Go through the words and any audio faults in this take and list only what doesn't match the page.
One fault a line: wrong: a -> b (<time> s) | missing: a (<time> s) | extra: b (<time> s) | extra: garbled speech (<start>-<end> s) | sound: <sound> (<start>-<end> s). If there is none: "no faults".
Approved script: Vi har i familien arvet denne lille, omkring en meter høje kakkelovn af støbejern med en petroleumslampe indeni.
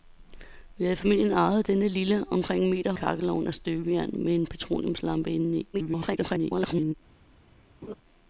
missing: høje (2.9 s)
extra: garbled speech (5.7-6.9 s)
sound: laugh (7.8-7.9 s)